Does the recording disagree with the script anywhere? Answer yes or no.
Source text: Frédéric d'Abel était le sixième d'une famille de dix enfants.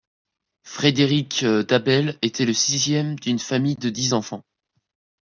no